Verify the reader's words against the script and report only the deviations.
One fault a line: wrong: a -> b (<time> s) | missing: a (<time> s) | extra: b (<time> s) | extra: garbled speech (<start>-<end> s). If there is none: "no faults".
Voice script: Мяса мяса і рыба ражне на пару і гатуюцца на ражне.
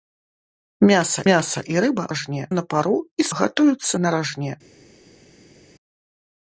no faults